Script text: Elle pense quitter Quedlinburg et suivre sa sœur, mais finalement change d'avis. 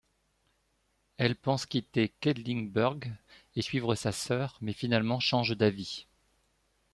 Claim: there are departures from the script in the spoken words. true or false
false